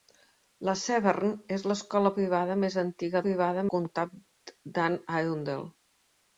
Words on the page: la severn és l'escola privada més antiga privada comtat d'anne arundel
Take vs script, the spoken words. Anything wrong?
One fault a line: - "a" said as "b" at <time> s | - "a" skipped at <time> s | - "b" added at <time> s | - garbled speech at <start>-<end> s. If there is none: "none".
none